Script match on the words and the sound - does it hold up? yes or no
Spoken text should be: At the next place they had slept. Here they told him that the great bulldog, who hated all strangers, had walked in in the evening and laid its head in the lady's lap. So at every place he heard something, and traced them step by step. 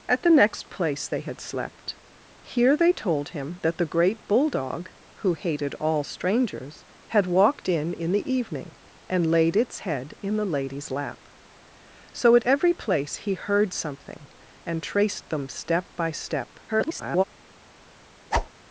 no